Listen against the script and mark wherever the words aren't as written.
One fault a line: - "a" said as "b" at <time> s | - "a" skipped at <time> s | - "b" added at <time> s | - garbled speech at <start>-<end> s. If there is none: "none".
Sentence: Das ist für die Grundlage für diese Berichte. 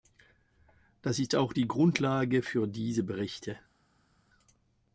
- "für" said as "auch" at 1.4 s